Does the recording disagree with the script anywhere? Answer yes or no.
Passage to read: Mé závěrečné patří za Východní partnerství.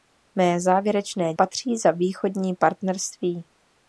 no